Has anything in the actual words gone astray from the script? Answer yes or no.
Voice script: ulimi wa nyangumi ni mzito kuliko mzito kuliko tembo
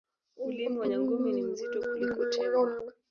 yes